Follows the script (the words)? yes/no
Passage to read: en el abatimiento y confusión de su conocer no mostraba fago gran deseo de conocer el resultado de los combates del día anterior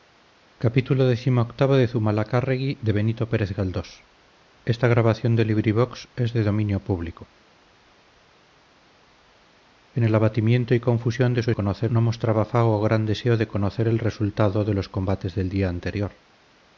yes